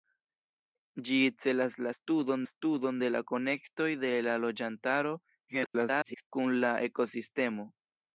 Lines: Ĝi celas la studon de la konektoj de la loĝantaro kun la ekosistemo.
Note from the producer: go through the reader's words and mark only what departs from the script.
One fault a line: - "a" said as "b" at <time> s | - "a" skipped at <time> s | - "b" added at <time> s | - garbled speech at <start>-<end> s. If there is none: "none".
- "studon" added at 2.5 s
- garbled speech at 5.5-6.3 s